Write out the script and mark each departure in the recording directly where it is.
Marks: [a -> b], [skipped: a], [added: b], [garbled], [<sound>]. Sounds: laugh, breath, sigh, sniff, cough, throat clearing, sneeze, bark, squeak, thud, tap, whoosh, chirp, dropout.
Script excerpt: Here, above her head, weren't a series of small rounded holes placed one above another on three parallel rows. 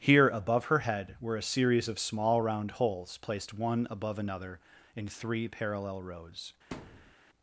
Here, above her head, [weren't -> were] a series of small [rounded -> round] holes placed one above another [on -> in] three parallel rows. [thud]